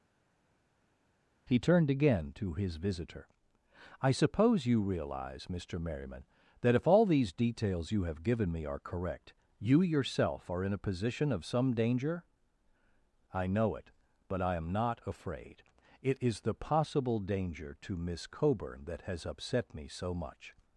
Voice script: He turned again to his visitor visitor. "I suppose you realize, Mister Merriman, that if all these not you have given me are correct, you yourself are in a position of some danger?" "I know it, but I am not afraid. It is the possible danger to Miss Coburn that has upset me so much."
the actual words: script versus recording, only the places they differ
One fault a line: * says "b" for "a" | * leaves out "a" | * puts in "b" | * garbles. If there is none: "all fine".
* leaves out "visitor"
* says "details" for "not"